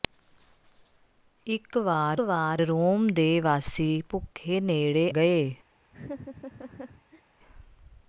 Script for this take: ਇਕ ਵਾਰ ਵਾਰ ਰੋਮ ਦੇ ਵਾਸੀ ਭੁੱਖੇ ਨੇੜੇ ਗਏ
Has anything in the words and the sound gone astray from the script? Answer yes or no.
yes